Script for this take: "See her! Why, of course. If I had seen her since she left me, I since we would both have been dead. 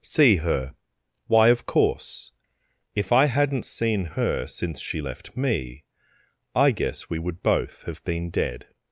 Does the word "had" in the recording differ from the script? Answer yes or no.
yes